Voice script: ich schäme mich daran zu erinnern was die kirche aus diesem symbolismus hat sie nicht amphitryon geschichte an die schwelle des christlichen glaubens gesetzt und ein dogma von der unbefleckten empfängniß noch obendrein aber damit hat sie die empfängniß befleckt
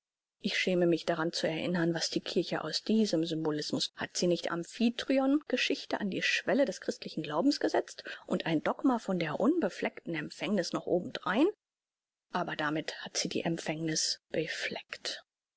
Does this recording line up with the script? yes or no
yes